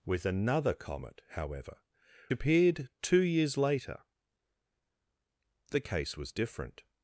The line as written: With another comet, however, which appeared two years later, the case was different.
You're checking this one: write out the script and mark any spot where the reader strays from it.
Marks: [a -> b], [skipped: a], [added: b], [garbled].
With another comet, however, [skipped: which] appeared two years later, the case was different.